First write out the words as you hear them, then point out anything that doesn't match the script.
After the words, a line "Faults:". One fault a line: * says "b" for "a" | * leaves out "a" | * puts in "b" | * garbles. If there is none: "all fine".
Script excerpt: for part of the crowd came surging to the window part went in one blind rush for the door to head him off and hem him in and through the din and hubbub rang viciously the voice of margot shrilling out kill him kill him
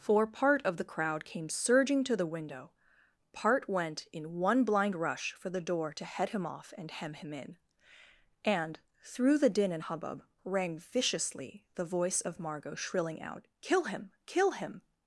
for part of the crowd came surging to the window part went in one blind rush for the door to head him off and hem him in and through the din and hubbub rang viciously the voice of margot shrilling out kill him kill him
Faults:
all fine